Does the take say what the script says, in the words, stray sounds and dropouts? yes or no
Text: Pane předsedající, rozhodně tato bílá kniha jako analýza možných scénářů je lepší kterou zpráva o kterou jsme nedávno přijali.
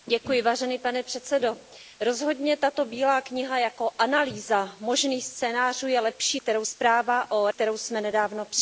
yes